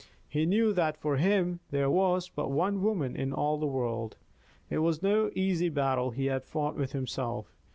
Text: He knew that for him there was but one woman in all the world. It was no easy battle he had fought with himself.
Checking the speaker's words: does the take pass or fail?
pass